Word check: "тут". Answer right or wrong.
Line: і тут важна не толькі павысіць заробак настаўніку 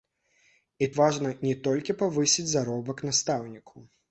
wrong